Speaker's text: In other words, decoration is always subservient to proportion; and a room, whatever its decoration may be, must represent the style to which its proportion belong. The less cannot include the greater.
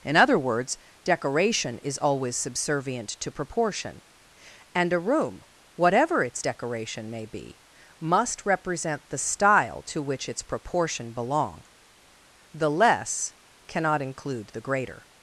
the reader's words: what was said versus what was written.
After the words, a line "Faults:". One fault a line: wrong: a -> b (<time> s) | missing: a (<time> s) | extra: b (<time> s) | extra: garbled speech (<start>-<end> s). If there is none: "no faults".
In other words, decoration is always subservient to proportion; and a room, whatever its decoration may be, must represent the style to which its proportion belong. The less cannot include the greater.
Faults:
no faults